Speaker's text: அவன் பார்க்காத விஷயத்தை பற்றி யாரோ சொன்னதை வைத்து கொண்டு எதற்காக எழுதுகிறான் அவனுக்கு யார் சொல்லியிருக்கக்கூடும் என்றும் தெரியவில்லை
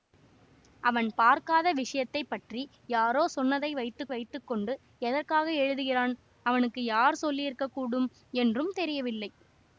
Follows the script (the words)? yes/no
no